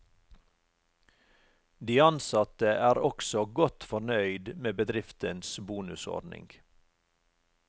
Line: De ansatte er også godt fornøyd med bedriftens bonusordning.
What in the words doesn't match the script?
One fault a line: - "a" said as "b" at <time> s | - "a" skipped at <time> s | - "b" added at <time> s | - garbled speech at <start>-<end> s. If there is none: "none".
none